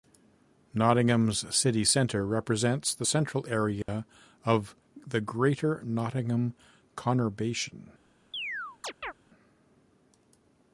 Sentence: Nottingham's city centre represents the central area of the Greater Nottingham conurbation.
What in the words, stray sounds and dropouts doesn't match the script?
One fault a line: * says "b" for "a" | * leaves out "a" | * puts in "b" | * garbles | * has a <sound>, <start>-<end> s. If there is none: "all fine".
* has a dropout, 3.8-3.9 s
* has a chirp, 8.3-9.1 s